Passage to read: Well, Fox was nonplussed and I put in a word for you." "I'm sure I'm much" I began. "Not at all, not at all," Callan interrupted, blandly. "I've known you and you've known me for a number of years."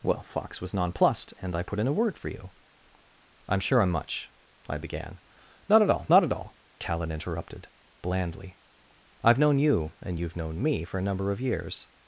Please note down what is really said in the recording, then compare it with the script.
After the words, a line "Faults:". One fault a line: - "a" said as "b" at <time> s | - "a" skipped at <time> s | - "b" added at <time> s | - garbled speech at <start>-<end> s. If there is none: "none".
Well, Fox was nonplussed and I put in a word for you." "I'm sure I'm much" I began. "Not at all, not at all," Callan interrupted, blandly. "I've known you and you've known me for a number of years."
Faults:
none